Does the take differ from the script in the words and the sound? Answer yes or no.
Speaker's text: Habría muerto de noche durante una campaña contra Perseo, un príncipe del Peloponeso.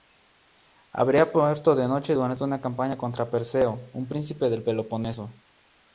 no